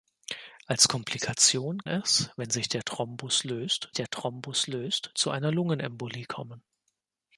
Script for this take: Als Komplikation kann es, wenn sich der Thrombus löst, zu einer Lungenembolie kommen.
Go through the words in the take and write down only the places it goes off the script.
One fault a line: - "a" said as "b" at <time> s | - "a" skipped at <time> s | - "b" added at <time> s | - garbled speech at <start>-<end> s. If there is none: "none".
- "kann" skipped at 1.8 s
- "der Thrombus löst" added at 3.9 s